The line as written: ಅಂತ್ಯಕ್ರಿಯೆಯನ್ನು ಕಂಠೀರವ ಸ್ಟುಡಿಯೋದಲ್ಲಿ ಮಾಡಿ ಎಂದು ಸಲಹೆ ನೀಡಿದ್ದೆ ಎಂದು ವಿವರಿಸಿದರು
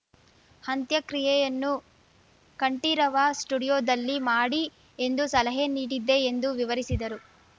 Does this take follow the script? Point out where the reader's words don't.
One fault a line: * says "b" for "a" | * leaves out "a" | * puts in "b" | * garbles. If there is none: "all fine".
all fine